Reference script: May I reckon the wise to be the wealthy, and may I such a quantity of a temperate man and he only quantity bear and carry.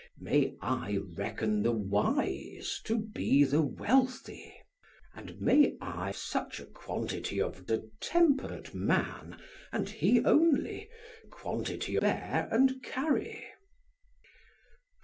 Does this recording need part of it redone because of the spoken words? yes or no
no